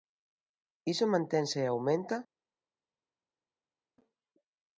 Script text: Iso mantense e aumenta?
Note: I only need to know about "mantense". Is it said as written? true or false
true